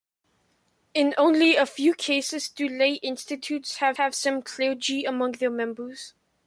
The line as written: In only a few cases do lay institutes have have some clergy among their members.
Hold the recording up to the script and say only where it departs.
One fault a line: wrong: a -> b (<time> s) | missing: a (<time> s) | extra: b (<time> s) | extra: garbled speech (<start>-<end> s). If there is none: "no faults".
no faults